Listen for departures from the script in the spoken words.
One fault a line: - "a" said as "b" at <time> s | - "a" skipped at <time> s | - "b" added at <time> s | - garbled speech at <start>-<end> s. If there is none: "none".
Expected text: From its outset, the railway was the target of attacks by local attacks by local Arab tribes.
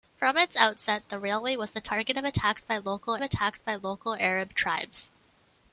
none